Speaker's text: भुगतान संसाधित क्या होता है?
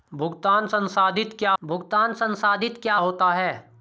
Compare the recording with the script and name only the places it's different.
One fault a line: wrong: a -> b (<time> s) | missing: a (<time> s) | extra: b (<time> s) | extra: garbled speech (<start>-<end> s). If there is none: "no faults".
extra: भुगतान संसाधित क्या (1.6 s)